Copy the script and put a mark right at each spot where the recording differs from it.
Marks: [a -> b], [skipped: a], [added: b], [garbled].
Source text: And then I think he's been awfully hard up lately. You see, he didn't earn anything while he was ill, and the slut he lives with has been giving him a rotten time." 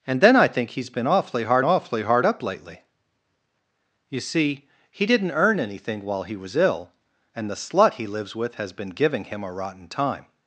And then I think he's been awfully hard [added: awfully hard] up lately. You see, he didn't earn anything while he was ill, and the slut he lives with has been giving him a rotten time."